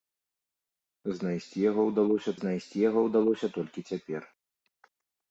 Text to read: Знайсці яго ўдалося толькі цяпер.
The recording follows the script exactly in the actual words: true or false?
false